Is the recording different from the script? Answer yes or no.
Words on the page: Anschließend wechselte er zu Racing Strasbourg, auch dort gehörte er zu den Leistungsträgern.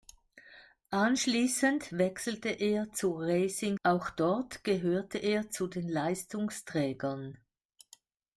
yes